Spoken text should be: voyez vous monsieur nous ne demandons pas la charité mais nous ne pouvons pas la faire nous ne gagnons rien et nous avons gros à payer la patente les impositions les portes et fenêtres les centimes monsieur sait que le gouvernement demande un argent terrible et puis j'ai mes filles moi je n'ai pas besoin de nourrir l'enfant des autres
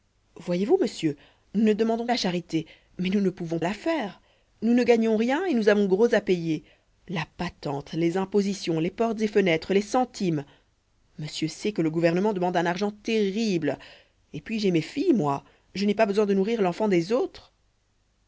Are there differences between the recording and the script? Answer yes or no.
yes